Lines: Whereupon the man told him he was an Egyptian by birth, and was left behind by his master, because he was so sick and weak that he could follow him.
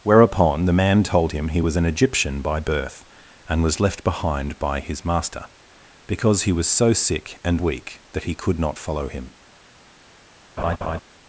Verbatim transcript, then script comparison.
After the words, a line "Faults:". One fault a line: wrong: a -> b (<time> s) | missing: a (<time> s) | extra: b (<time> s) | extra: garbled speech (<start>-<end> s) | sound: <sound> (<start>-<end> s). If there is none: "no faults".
Whereupon the man told him he was an Egyptian by birth, and was left behind by his master, because he was so sick and weak that he could not follow him.
Faults:
extra: not (8.6 s)
sound: laugh (10.6-11.0 s)